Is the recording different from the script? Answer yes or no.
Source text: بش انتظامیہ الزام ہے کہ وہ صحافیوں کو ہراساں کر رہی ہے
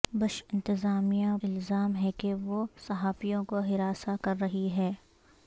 no